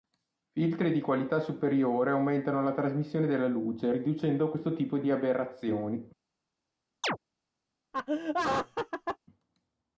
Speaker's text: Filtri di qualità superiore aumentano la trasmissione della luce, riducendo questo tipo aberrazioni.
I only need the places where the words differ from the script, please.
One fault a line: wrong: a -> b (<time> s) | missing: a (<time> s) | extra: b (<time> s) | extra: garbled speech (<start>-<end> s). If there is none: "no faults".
extra: di (5.0 s)